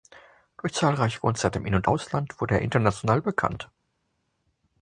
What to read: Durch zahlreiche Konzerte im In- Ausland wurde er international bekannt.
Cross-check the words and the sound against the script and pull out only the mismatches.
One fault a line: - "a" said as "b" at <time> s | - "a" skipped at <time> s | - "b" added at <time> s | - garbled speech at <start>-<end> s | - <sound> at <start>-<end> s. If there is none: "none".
- "und" added at 1.8 s